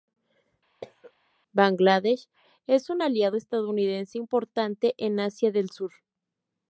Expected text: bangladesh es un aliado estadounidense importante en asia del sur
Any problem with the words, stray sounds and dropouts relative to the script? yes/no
yes